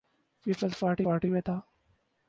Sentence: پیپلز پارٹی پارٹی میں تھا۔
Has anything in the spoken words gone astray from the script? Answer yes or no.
no